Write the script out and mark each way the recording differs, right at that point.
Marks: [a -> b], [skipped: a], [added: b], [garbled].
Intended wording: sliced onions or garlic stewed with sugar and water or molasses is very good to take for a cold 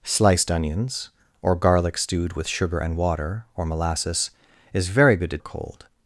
sliced onions or garlic stewed with sugar and water or molasses is very good to [skipped: take for] a cold